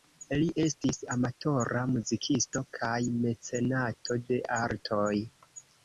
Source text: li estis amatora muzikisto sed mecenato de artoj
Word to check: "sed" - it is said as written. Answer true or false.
false